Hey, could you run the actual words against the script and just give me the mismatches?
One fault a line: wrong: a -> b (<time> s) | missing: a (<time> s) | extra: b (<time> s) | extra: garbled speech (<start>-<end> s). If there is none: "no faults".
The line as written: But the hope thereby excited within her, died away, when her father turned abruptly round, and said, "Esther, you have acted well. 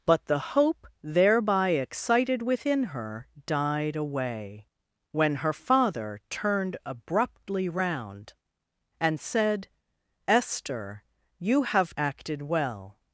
no faults